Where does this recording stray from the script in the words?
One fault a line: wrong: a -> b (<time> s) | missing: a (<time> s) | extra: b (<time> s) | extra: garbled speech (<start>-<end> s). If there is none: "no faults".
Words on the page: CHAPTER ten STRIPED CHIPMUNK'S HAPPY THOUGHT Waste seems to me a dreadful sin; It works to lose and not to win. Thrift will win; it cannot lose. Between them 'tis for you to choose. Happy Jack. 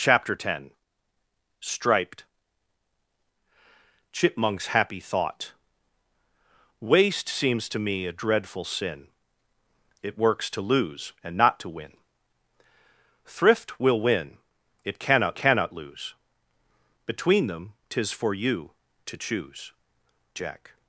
extra: cannot (15.4 s)
missing: Happy (19.7 s)